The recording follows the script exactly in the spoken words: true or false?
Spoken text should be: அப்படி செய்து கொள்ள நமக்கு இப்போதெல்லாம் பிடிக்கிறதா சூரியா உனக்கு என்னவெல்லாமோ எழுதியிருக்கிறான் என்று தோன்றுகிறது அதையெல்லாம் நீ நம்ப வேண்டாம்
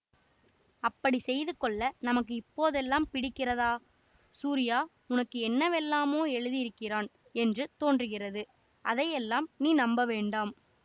true